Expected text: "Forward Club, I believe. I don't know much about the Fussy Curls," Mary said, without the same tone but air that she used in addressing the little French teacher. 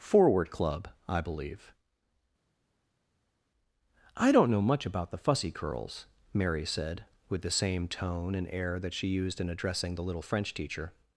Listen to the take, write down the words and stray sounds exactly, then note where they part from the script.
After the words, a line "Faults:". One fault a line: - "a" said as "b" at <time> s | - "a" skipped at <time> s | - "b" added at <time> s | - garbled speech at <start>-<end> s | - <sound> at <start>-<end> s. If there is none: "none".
"Forward Club, I believe. I don't know much about the Fussy Curls," Mary said, with the same tone and air that she used in addressing the little French teacher.
Faults:
- "without" said as "with" at 7.3 s
- "but" said as "and" at 8.4 s